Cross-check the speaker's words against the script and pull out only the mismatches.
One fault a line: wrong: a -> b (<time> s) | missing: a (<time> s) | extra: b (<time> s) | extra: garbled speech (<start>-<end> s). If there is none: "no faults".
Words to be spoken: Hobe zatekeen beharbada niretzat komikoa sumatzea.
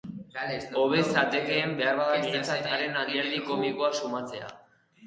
extra: haren alderdi (2.7 s)